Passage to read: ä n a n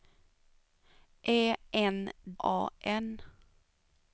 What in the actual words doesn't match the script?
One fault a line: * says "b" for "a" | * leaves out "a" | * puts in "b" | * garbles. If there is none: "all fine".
all fine